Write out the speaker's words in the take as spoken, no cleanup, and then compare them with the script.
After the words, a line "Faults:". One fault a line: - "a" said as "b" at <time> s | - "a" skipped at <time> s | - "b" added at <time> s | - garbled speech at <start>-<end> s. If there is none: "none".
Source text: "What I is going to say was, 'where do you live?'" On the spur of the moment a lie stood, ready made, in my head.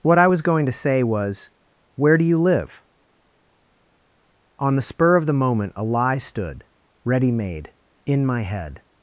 "What I was going to say was, 'where do you live?'" On the spur of the moment a lie stood, ready made, in my head.
Faults:
- "is" said as "was" at 0.3 s